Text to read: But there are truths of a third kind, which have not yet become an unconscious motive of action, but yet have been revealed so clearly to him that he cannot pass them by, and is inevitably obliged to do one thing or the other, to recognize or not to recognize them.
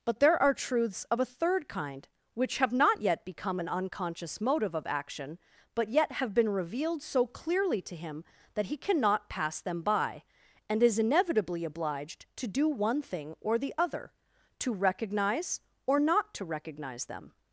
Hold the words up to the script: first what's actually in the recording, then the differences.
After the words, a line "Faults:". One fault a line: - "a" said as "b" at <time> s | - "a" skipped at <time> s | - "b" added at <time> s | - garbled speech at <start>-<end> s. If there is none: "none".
But there are truths of a third kind, which have not yet become an unconscious motive of action, but yet have been revealed so clearly to him that he cannot pass them by, and is inevitably obliged to do one thing or the other, to recognize or not to recognize them.
Faults:
none